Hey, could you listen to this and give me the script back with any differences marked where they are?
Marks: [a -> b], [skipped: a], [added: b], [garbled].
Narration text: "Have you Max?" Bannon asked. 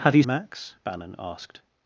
"Have you Max?" Bannon asked.